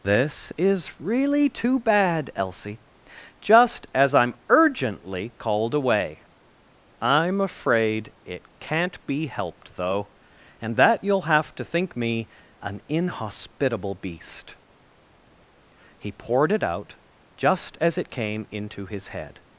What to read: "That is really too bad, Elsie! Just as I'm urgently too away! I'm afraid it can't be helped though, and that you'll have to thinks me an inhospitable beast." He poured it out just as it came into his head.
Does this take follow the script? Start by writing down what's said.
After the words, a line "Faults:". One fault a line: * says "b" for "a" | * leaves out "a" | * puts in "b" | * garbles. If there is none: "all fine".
"This is really too bad, Elsie! Just as I'm urgently called away! I'm afraid it can't be helped though, and that you'll have to think me an inhospitable beast." He poured it out just as it came into his head.
Faults:
* says "This" for "That"
* says "called" for "too"
* says "think" for "thinks"